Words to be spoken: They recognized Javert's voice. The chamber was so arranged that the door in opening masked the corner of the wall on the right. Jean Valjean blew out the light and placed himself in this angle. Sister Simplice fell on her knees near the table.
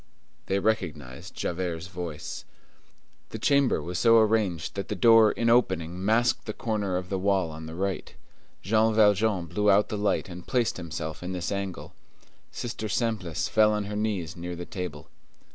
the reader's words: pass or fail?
pass